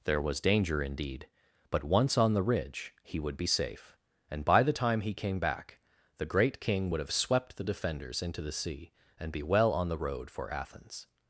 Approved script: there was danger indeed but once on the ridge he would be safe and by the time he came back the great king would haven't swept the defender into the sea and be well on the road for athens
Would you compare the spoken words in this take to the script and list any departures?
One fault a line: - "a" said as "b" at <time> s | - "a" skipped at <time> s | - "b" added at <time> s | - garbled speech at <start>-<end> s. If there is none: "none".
- "haven't" said as "have" at 7.0 s
- "defender" said as "defenders" at 7.6 s